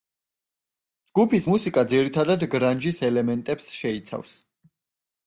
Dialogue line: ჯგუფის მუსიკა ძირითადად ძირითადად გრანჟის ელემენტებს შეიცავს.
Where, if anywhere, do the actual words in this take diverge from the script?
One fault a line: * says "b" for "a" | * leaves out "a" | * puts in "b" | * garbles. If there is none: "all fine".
* leaves out "ძირითადად"